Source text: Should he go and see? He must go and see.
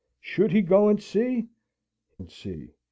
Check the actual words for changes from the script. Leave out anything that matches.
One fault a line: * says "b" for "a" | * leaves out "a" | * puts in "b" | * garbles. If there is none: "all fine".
* leaves out "He must go"